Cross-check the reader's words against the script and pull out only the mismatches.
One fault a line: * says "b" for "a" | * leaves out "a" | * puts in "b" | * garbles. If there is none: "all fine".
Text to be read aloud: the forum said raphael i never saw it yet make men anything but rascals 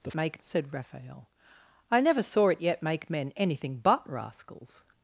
* says "make" for "forum"